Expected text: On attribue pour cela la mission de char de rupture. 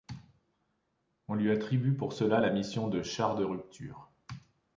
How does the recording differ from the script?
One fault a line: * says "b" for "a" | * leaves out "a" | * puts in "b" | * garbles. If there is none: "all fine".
* puts in "lui"